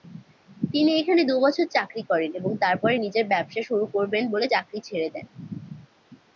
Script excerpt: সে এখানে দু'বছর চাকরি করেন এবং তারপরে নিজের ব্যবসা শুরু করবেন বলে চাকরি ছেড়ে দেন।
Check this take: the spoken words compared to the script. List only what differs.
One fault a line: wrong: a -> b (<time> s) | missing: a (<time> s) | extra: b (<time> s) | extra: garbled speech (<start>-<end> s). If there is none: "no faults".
wrong: সে -> তিনি (0.7 s)